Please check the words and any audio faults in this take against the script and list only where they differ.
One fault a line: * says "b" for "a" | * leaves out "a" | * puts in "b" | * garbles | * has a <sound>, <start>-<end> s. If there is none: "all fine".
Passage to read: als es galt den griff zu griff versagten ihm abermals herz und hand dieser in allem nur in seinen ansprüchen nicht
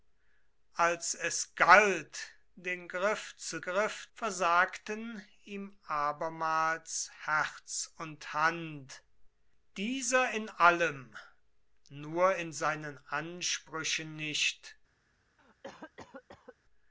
* has a cough, 15.4-16.6 s